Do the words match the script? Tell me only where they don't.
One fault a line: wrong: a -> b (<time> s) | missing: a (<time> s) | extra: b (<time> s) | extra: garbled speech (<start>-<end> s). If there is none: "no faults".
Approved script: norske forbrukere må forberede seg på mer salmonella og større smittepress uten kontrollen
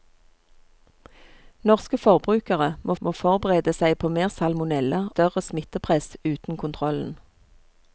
extra: må (3.0 s)
missing: og (5.0 s)